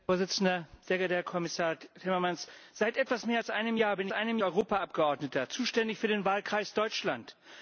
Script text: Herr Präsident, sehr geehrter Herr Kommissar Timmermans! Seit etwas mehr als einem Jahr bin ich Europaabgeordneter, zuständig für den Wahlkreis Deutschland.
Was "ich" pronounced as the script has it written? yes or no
no